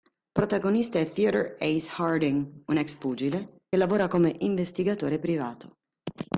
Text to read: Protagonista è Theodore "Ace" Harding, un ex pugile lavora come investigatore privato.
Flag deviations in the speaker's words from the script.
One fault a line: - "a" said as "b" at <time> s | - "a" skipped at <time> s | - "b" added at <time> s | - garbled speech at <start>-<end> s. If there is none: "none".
none